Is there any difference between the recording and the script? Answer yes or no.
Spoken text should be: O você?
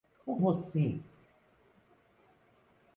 no